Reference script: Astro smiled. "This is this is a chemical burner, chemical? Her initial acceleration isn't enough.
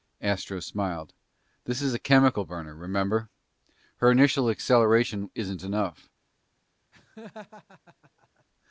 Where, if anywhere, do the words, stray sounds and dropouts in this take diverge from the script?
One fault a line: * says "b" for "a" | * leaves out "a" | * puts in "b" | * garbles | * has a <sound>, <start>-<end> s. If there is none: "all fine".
* leaves out "this is"
* says "remember" for "chemical"
* has a laugh, 6.9-8.4 s